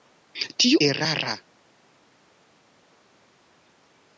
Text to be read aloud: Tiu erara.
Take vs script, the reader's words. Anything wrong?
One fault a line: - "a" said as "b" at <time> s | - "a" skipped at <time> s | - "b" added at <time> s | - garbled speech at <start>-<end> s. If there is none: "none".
none